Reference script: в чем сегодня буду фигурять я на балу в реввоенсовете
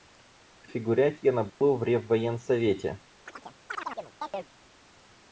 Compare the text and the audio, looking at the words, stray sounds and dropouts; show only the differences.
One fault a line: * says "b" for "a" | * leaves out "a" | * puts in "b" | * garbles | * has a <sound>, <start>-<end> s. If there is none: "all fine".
* leaves out "чем сегодня буду"
* has a dropout, 1.5-1.6 s
* has a chirp, 3.3-4.5 s